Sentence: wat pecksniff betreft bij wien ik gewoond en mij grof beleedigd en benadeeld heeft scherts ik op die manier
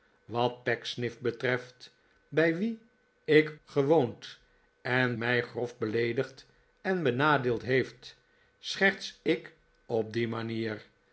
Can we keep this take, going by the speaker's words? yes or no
yes